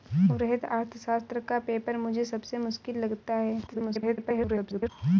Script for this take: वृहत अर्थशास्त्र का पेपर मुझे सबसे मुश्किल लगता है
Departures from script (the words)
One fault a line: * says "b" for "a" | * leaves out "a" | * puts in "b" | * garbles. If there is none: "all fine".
* garbles